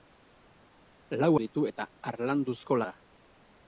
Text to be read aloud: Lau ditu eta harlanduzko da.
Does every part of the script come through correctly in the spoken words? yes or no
yes